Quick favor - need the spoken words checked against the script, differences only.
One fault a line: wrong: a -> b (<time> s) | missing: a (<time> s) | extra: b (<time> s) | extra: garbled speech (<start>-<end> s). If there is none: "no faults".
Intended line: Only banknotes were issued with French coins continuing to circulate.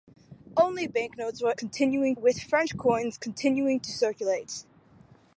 wrong: issued -> continuing (1.5 s)